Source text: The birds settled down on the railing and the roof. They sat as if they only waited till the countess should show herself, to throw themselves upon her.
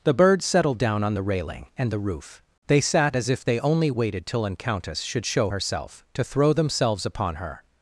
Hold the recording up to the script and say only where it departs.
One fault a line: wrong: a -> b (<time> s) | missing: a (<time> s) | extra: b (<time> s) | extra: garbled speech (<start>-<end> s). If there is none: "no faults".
wrong: the -> an (4.5 s)